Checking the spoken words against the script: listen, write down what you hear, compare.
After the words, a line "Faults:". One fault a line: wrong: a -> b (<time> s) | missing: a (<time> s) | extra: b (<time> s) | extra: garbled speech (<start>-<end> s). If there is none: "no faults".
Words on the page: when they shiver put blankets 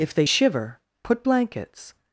if they shiver put blankets
Faults:
wrong: when -> if (0.0 s)